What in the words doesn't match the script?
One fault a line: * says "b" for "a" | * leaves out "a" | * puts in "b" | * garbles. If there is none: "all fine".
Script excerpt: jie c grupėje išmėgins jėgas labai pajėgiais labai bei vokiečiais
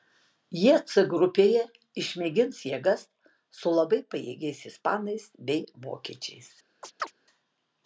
* puts in "su"
* says "ispanais" for "labai"